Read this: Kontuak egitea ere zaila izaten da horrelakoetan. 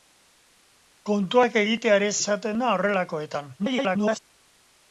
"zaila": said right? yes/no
no